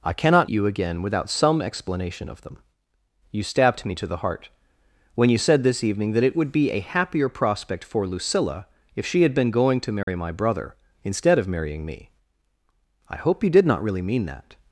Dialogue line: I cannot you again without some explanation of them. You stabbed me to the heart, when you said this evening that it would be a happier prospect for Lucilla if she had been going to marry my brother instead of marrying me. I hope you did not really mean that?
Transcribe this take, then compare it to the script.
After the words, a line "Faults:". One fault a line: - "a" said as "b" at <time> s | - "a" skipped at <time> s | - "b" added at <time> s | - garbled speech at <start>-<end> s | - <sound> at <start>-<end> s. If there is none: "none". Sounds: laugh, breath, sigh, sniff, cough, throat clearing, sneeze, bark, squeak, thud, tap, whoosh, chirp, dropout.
I cannot you again without some explanation of them. You stabbed me to the heart, when you said this evening that it would be a happier prospect for Lucilla if she had been going to marry my brother instead of marrying me. I hope you did not really mean that?
Faults:
- dropout at 10.0-10.1 s